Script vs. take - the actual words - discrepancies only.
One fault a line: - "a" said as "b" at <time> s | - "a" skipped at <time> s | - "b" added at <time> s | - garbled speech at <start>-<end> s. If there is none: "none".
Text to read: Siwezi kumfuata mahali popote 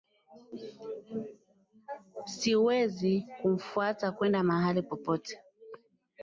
- "kwenda" added at 4.1 s